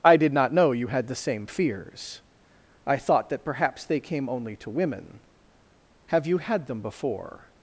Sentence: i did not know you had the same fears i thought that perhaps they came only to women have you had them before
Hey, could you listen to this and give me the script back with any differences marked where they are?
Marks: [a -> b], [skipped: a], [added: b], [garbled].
i did not know you had the same fears i thought that perhaps they came only to women have you had them before